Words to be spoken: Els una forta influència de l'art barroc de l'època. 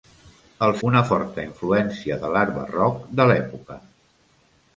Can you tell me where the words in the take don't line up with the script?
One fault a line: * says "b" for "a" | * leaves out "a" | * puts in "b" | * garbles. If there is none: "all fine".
all fine